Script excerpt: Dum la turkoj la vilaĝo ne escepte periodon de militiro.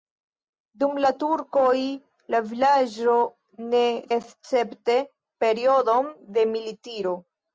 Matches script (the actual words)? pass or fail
pass